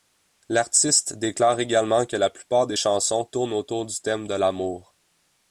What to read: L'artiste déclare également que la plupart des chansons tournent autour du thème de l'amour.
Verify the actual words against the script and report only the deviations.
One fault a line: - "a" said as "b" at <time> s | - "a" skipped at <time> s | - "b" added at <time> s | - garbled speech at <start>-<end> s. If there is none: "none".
none